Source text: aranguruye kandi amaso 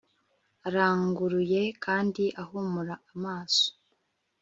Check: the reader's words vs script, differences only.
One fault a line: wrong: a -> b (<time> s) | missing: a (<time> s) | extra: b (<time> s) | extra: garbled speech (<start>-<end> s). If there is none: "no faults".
extra: ahumura (2.4 s)